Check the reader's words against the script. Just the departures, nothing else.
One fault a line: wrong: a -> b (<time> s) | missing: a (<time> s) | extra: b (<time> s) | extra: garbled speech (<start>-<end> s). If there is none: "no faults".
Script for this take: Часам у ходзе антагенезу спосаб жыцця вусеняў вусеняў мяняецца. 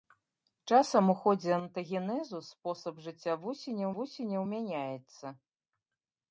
no faults